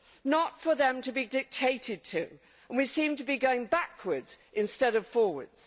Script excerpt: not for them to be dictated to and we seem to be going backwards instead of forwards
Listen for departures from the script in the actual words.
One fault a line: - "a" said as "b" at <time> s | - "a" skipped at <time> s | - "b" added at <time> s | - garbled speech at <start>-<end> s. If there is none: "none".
none